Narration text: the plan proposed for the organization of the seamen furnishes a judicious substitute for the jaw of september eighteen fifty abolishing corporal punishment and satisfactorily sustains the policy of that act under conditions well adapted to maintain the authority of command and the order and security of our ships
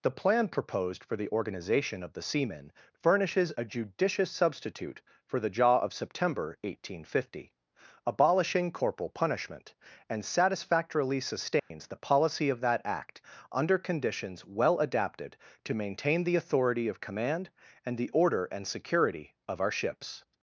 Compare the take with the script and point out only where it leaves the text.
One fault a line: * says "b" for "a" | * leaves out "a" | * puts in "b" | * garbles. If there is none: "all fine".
all fine